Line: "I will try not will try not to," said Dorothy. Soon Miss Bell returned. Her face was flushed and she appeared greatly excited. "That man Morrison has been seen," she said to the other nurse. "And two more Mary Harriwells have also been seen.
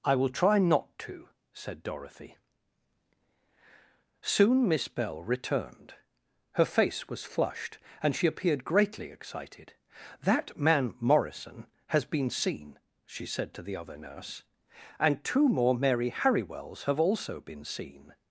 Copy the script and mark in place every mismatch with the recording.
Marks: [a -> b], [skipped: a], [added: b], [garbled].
"I will try not [skipped: will try not] to," said Dorothy. Soon Miss Bell returned. Her face was flushed and she appeared greatly excited. "That man Morrison has been seen," she said to the other nurse. "And two more Mary Harriwells have also been seen.